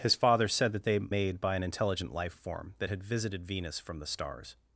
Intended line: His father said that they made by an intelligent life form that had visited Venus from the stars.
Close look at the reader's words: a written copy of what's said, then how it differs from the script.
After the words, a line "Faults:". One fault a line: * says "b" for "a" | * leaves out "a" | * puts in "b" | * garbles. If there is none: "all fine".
His father said that they made by an intelligent life form that had visited Venus from the stars.
Faults:
all fine